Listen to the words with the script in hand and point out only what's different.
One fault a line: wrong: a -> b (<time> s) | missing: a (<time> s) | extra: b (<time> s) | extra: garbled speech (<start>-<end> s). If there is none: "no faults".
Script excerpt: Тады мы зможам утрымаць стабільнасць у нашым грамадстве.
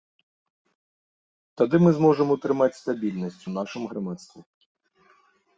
no faults